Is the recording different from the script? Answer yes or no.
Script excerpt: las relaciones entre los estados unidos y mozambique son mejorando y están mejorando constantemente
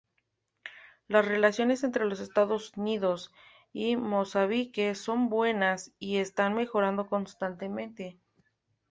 yes